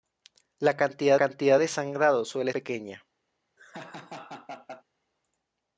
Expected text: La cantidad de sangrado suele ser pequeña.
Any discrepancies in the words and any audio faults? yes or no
yes